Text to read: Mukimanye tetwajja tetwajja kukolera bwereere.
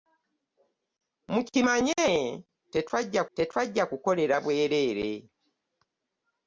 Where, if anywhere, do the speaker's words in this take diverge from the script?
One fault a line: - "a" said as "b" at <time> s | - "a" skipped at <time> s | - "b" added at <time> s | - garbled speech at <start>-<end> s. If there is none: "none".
none